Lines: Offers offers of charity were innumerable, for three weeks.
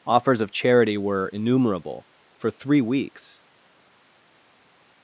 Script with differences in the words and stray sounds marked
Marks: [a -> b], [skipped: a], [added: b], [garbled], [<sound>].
Offers [skipped: offers] of charity were innumerable, for three weeks.